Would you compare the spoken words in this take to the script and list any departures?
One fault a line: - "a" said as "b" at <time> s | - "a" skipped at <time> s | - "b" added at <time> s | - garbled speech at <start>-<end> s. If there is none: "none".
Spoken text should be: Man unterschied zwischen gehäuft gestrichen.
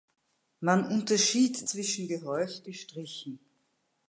none